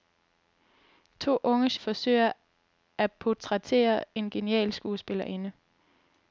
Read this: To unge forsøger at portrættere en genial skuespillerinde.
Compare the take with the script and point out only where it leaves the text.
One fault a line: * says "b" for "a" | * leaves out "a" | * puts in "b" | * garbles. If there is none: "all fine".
all fine